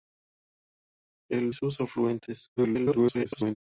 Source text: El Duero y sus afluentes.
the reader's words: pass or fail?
fail